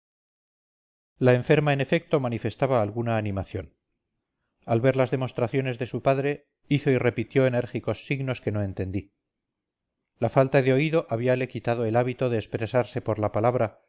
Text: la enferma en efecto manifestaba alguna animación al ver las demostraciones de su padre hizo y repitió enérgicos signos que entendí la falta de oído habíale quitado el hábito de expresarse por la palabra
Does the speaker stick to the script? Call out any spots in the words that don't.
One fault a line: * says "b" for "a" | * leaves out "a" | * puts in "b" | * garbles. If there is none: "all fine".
* puts in "no"